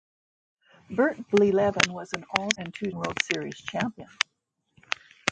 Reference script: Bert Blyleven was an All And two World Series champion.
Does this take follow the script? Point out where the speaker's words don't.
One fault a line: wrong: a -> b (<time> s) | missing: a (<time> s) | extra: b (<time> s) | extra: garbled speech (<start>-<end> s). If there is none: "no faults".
no faults